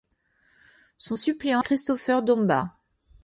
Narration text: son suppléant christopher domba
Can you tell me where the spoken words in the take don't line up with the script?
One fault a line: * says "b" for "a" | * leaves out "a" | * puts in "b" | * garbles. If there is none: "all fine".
all fine